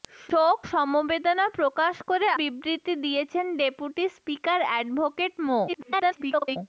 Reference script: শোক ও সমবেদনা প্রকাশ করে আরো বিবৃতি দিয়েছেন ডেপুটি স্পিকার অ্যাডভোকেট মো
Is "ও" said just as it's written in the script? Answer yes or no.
no